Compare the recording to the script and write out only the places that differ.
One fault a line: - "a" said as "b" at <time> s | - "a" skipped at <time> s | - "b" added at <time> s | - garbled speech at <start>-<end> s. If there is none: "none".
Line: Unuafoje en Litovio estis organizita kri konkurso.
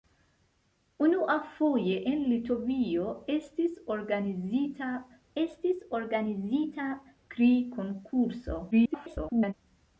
- "estis organizita" added at 5.4 s
- garbled speech at 8.7-9.5 s